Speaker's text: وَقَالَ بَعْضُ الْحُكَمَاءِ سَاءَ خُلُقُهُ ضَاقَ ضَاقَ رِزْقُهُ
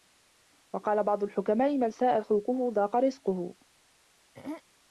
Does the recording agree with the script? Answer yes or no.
no